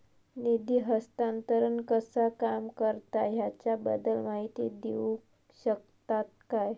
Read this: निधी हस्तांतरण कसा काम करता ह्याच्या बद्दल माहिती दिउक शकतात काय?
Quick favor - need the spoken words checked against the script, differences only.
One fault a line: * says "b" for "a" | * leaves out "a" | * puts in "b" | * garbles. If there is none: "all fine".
all fine